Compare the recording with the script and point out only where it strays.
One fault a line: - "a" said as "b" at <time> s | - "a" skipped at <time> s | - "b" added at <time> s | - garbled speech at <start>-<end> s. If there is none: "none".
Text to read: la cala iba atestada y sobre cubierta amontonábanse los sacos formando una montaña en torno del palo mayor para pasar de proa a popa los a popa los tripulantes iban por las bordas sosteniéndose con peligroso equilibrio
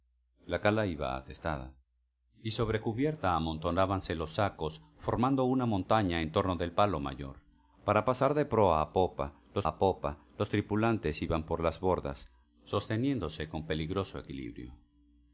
none